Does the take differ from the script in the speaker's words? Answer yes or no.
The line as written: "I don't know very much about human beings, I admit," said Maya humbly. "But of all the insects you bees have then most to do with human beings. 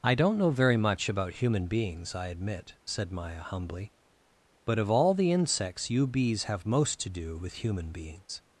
yes